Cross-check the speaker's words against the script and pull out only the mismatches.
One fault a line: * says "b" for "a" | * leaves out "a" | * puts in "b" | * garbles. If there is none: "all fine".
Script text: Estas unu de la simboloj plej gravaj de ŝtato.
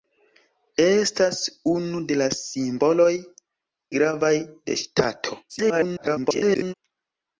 * leaves out "plej"
* garbles